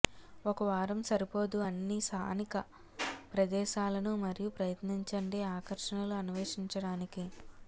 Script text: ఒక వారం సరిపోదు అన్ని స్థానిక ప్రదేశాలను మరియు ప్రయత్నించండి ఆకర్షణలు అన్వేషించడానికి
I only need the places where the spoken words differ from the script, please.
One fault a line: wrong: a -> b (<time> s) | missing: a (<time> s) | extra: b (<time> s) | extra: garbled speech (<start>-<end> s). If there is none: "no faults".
no faults